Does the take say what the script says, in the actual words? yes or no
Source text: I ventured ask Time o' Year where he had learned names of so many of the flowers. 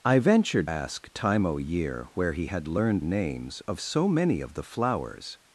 yes